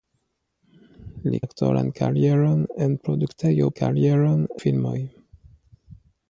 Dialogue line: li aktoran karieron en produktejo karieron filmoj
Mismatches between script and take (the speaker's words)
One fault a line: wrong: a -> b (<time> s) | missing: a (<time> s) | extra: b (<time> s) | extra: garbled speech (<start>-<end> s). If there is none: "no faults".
no faults